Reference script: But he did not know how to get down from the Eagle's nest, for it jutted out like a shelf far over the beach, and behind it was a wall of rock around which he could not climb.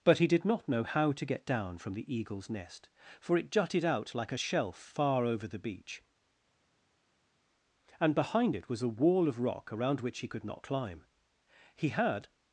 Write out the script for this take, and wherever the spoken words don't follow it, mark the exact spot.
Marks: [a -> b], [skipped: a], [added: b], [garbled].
But he did not know how to get down from the Eagle's nest, for it jutted out like a shelf far over the beach, and behind it was a wall of rock around which he could not climb. [added: He had]